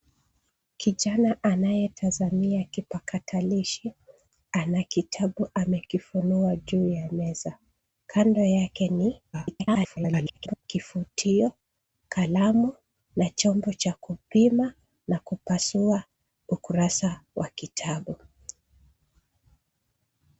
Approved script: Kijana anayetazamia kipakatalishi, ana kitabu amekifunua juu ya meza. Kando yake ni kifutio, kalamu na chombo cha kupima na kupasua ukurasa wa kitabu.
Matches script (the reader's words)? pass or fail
fail